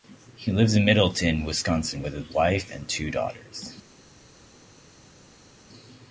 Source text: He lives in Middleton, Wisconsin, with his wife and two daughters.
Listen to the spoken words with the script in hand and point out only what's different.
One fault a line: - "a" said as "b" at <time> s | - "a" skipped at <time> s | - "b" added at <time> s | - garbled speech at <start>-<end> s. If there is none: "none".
none